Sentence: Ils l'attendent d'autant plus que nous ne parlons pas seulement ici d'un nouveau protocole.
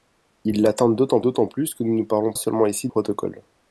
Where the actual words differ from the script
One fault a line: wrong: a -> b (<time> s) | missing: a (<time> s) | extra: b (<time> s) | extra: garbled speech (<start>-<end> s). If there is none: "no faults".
extra: d'autant (1.2 s)
missing: pas (2.3 s)
missing: d'un nouveau (2.9 s)